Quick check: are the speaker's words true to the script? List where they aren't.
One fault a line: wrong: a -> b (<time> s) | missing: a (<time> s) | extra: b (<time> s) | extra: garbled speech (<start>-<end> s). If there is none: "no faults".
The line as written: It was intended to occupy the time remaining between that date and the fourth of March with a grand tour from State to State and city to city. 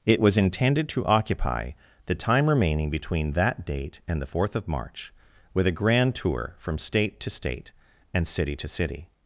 no faults